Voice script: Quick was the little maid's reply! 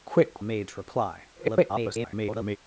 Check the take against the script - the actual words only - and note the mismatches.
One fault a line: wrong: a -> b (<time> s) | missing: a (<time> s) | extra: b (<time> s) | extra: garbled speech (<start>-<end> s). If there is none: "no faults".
missing: was the little (0.4 s)
extra: garbled speech (1.3-2.6 s)